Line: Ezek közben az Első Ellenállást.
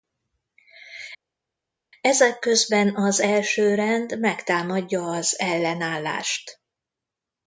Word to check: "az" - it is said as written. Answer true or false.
true